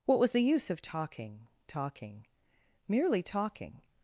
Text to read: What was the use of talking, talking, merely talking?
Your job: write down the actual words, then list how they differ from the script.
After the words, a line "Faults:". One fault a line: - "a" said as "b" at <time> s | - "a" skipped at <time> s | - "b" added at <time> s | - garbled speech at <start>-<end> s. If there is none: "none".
What was the use of talking, talking, merely talking?
Faults:
none